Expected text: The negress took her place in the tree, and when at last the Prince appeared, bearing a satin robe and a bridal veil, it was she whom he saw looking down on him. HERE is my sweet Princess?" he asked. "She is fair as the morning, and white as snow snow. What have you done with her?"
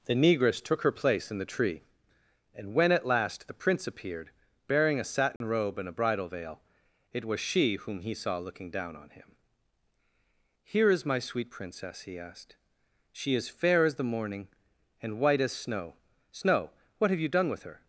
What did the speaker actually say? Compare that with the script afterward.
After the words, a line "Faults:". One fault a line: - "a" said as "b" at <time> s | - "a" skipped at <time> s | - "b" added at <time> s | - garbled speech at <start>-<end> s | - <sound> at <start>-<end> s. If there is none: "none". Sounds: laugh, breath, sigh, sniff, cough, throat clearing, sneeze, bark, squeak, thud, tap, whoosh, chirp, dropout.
The negress took her place in the tree, and when at last the Prince appeared, bearing a satin robe and a bridal veil, it was she whom he saw looking down on him. HERE is my sweet Princess?" he asked. "She is fair as the morning, and white as snow snow. What have you done with her?"
Faults:
- dropout at 5.4-5.4 s